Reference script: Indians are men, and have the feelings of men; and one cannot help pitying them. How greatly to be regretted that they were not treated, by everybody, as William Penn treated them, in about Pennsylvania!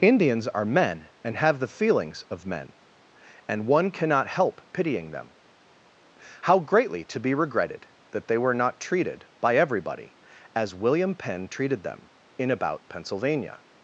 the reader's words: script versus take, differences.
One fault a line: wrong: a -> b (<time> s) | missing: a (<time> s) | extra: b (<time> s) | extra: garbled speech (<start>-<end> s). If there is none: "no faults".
no faults